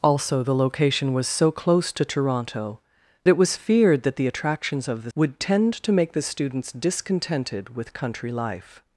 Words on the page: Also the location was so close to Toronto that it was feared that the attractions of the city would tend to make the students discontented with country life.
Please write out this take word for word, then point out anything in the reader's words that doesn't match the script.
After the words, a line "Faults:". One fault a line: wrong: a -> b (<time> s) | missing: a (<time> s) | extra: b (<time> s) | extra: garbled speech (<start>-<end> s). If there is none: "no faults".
Also the location was so close to Toronto it was feared that the attractions of the would tend to make the students discontented with country life.
Faults:
missing: that (2.8 s)
missing: city (5.1 s)